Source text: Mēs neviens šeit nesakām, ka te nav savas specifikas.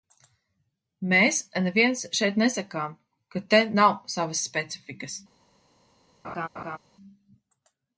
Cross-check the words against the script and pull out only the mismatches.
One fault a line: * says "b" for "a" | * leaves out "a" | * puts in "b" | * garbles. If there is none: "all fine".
all fine